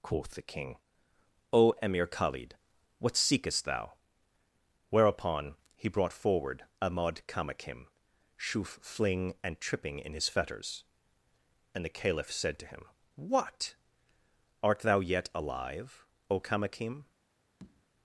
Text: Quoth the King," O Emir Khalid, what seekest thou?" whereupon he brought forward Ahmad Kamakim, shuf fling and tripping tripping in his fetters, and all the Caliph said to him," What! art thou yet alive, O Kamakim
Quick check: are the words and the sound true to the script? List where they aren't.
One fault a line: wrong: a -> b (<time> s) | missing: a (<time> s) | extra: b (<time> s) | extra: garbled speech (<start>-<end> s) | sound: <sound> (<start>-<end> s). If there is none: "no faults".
missing: tripping (10.0 s)
missing: all (11.8 s)
sound: tap (17.6-17.9 s)